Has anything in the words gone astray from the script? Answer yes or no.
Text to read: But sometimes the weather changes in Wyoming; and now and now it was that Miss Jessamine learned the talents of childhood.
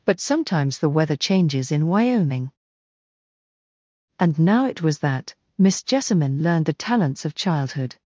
yes